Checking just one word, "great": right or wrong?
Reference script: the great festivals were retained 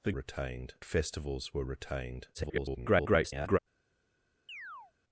wrong